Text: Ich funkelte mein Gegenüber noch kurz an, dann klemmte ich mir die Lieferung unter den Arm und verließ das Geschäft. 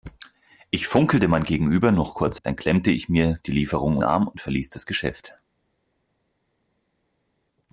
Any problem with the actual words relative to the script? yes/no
yes